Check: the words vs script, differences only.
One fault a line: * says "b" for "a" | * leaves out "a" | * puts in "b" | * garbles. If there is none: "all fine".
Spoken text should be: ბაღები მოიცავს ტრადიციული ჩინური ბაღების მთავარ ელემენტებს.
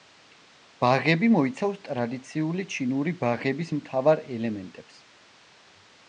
all fine